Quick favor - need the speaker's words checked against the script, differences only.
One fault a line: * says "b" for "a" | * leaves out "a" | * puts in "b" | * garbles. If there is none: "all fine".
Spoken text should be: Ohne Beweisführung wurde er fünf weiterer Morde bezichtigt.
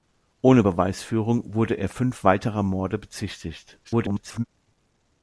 * garbles